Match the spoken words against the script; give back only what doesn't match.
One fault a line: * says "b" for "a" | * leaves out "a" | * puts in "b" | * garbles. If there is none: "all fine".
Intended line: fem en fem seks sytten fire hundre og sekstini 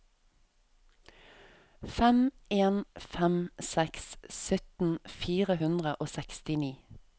all fine